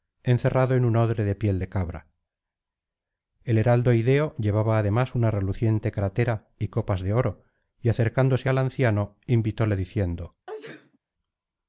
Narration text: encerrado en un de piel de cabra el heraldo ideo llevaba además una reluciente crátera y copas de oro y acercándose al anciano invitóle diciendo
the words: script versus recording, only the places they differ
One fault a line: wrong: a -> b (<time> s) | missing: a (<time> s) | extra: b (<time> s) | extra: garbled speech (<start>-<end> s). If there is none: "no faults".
extra: odre (0.9 s)